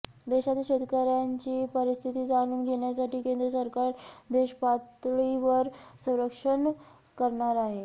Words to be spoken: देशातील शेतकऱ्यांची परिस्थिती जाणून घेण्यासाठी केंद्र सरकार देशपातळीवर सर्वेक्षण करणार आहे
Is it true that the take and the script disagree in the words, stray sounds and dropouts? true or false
false